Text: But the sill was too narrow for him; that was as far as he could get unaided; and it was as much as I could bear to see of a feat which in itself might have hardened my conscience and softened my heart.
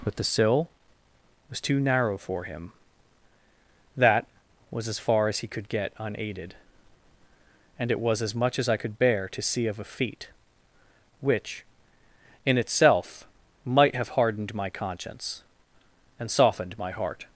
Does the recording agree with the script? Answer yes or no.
yes